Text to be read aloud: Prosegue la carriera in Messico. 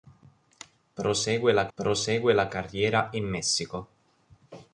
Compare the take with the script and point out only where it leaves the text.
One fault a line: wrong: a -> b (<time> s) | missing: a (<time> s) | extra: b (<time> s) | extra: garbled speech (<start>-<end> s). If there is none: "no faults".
extra: prosegue la (1.8 s)